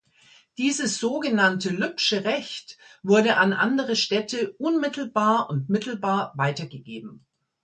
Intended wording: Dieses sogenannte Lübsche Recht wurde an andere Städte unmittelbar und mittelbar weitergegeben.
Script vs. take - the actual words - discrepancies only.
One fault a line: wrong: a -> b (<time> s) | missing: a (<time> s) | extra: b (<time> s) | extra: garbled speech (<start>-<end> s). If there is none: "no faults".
no faults